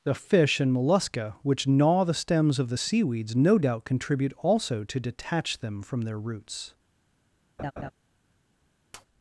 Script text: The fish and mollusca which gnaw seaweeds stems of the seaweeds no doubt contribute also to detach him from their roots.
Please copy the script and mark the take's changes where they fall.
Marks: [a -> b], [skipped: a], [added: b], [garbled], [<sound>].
The fish and mollusca which gnaw [seaweeds -> the] stems of the seaweeds no doubt contribute also to detach [him -> them] from their roots. [laugh] [tap]